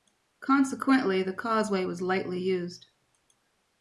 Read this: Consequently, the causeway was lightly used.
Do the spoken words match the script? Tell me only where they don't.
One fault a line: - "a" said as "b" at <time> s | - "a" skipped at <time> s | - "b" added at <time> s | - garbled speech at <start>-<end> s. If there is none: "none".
none